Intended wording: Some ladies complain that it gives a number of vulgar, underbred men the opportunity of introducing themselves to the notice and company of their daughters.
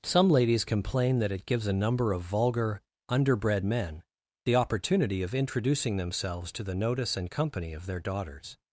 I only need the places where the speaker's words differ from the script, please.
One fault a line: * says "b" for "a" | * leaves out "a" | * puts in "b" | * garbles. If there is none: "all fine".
all fine